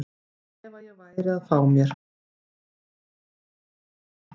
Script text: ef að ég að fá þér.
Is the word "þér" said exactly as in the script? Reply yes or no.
no